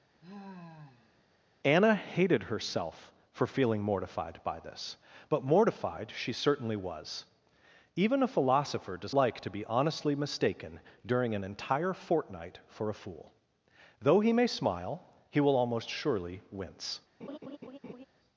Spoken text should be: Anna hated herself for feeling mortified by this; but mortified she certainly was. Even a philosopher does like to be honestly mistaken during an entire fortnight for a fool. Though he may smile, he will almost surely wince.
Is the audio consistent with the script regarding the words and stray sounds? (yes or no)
no